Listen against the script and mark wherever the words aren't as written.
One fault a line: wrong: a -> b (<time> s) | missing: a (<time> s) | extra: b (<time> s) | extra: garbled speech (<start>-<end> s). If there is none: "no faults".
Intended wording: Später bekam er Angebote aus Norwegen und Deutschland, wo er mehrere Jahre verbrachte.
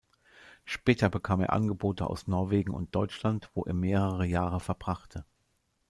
no faults